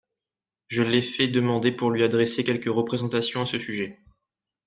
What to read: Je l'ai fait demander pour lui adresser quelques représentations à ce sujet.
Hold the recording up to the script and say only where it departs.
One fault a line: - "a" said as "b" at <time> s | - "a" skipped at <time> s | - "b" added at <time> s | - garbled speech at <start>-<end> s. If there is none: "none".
none